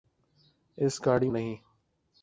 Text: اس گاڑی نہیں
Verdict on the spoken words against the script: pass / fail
pass